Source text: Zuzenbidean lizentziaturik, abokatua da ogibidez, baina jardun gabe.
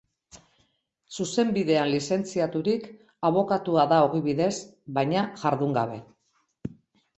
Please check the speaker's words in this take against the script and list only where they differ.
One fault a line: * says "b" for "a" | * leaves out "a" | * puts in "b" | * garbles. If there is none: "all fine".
all fine